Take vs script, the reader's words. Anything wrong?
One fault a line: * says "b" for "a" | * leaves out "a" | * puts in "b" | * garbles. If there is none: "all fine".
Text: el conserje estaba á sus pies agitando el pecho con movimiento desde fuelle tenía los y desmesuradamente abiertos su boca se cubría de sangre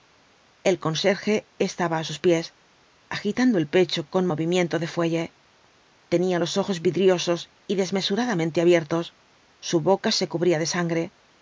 * says "de" for "desde"
* puts in "ojos vidriosos"